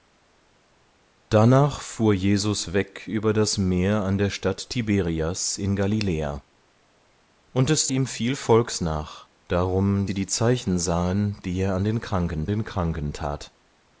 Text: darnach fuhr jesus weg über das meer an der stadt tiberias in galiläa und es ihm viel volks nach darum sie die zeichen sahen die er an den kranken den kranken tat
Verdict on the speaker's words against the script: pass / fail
pass